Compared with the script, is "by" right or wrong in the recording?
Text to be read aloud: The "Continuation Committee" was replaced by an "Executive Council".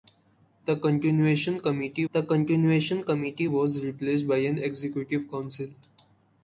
right